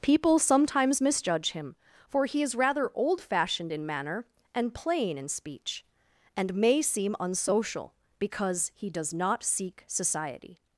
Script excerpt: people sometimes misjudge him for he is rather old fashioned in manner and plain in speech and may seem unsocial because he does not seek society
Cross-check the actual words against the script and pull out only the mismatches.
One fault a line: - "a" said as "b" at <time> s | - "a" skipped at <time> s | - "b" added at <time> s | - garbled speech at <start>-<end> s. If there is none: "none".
none